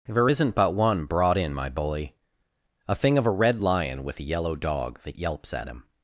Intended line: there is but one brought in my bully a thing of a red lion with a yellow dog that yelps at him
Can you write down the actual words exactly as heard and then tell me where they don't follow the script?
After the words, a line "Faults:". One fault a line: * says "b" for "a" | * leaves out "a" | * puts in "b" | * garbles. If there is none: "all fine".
there isn't but one brought in my bully a thing of a red lion with a yellow dog that yelps at him
Faults:
* says "isn't" for "is"